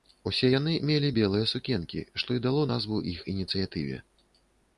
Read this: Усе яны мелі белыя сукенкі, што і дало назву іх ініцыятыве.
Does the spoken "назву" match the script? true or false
true